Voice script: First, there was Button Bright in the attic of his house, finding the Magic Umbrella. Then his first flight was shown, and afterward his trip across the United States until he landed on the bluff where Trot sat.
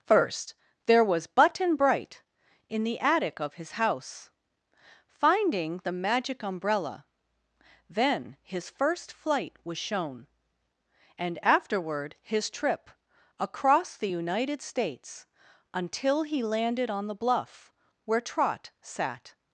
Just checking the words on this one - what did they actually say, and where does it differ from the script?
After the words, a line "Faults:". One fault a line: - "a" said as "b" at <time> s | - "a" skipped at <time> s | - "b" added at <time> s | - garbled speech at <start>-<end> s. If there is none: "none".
First, there was Button Bright in the attic of his house, finding the Magic Umbrella. Then his first flight was shown, and afterward his trip across the United States until he landed on the bluff where Trot sat.
Faults:
none